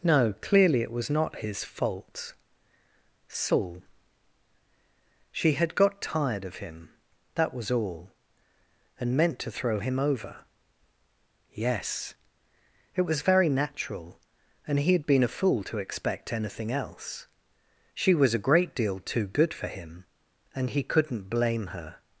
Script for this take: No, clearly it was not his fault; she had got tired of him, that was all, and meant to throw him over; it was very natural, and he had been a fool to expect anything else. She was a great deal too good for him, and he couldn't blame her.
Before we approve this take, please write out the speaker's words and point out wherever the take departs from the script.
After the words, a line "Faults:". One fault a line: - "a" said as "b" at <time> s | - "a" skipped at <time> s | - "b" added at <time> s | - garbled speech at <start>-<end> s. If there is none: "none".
No, clearly it was not his fault; saul she had got tired of him, that was all, and meant to throw him over; yes it was very natural, and he had been a fool to expect anything else. She was a great deal too good for him, and he couldn't blame her.
Faults:
- "saul" added at 3.3 s
- "yes" added at 11.5 s